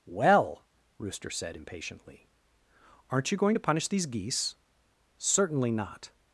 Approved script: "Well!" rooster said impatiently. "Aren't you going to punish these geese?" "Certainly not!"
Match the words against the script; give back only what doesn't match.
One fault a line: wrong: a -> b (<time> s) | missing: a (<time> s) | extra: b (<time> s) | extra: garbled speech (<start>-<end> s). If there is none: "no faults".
no faults